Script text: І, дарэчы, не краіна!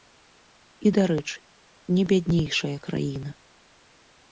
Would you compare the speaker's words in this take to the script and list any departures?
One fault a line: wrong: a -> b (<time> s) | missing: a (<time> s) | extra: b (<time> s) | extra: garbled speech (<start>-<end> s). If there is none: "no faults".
extra: бяднейшая (2.1 s)